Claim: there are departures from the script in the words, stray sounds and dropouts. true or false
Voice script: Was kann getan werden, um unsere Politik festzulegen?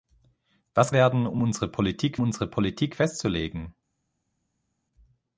true